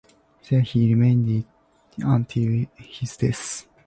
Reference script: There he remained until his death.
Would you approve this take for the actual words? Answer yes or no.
yes